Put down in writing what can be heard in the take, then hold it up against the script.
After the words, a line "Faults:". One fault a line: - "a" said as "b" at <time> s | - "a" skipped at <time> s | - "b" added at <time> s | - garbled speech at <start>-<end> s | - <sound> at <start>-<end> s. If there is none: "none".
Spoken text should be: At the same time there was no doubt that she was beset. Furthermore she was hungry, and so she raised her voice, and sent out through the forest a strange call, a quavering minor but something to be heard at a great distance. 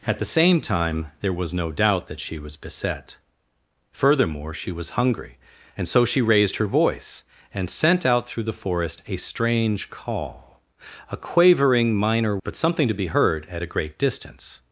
At the same time there was no doubt that she was beset. Furthermore she was hungry, and so she raised her voice, and sent out through the forest a strange call, a quavering minor but something to be heard at a great distance.
Faults:
none